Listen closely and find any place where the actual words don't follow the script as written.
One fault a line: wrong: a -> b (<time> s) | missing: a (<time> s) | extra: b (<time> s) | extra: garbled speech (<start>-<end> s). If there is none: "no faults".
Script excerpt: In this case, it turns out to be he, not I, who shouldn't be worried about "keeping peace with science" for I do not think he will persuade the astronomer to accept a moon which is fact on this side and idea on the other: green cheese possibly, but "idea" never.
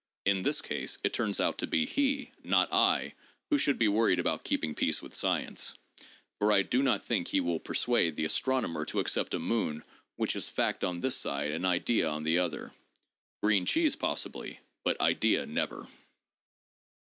wrong: shouldn't -> should (3.6 s)